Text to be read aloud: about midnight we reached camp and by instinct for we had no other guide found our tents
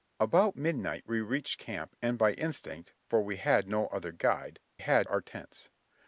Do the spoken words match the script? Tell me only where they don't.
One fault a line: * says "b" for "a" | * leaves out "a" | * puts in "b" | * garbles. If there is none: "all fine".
* says "had" for "found"